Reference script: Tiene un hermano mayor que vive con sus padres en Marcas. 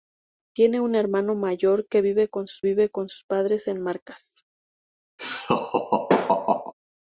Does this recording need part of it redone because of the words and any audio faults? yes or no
yes